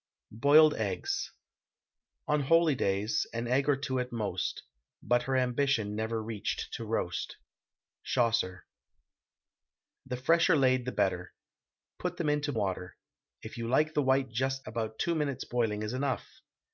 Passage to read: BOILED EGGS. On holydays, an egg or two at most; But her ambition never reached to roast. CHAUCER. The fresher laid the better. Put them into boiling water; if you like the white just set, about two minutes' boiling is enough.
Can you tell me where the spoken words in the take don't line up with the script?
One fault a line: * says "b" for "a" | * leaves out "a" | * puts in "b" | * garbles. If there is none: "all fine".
* leaves out "boiling"
* leaves out "set"